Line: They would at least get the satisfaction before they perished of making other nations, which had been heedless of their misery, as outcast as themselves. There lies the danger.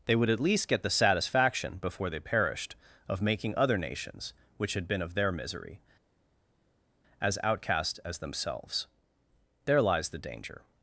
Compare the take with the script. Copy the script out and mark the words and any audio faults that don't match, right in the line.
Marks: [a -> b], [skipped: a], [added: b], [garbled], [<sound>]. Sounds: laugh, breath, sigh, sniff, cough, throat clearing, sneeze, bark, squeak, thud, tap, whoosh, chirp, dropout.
They would at least get the satisfaction before they perished of making other nations, which had been [skipped: heedless] of their misery, as outcast as themselves. There lies the danger.